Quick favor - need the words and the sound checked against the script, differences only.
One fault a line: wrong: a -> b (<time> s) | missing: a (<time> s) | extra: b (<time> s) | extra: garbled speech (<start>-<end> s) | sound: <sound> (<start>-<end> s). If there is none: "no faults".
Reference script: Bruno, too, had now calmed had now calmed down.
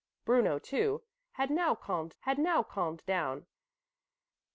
no faults